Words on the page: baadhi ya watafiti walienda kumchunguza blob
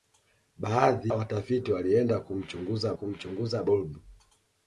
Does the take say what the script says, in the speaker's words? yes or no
no